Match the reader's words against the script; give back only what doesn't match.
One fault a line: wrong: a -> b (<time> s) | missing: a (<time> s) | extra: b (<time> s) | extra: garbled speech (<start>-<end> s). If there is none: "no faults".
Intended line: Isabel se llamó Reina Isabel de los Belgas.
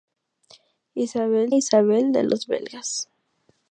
missing: se llamó Reina (1.5 s)